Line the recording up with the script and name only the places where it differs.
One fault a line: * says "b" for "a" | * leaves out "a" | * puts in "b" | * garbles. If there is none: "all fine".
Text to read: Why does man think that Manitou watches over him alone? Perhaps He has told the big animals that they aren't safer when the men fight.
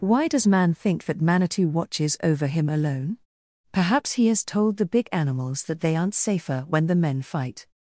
all fine